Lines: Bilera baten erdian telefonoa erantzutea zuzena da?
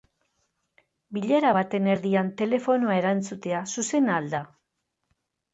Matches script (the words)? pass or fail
fail